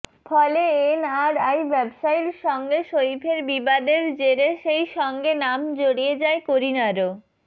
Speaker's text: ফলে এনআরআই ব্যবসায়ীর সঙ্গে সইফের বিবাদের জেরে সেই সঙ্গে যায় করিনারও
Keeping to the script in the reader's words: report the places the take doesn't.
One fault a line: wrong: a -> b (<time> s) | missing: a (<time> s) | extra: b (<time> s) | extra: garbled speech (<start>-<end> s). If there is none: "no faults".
extra: নাম জড়িয়ে (5.4 s)